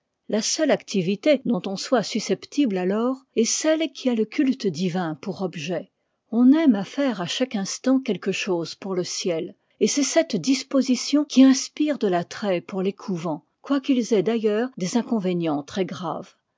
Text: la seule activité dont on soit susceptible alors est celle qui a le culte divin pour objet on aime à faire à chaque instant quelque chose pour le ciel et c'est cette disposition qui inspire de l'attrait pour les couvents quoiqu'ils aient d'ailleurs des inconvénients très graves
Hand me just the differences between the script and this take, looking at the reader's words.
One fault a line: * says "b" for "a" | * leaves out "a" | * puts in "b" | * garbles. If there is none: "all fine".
all fine